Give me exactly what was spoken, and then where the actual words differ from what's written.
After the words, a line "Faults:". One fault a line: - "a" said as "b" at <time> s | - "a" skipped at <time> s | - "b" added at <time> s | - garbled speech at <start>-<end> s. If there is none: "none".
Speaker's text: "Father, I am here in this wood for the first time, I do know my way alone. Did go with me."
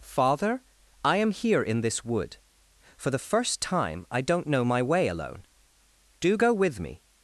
"Father, I am here in this wood for the first time, I don't know my way alone. Do go with me."
Faults:
- "do" said as "don't" at 4.2 s
- "Did" said as "Do" at 6.2 s